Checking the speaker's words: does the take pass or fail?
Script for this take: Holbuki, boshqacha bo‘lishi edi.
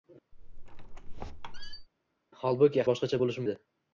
pass